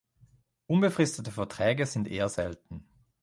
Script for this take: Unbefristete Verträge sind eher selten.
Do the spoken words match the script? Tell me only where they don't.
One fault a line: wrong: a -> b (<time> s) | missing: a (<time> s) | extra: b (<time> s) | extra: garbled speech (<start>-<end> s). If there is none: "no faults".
no faults